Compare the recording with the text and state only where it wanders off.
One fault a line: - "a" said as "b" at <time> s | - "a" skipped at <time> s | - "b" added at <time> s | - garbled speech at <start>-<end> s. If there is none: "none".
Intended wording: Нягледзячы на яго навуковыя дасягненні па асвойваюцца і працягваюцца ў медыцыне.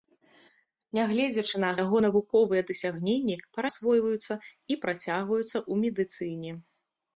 none